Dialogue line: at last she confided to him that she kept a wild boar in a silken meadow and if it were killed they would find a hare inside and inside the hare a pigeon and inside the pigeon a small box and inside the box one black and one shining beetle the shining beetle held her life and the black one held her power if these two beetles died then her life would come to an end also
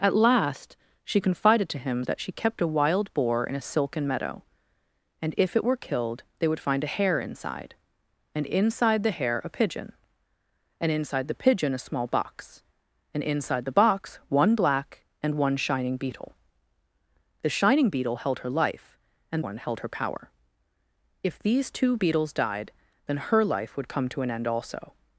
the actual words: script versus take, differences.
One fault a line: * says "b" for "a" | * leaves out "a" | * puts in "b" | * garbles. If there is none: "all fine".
* leaves out "the black"